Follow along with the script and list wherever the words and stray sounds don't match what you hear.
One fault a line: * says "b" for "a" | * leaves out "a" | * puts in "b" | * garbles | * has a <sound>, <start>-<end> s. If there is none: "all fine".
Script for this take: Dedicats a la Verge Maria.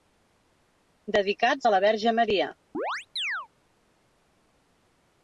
* has a chirp, 2.7-3.5 s